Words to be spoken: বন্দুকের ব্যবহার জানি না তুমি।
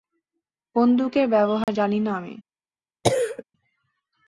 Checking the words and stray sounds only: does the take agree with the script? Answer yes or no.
no